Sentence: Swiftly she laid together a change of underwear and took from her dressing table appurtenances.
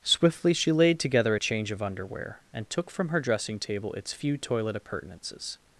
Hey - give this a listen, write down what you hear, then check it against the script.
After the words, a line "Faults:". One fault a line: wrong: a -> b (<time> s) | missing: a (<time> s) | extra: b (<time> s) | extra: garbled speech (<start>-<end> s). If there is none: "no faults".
Swiftly she laid together a change of underwear and took from her dressing table its few toilet appurtenances.
Faults:
extra: its few toilet (3.9 s)